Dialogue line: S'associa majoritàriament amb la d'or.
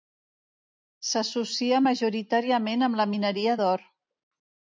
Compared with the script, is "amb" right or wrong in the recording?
right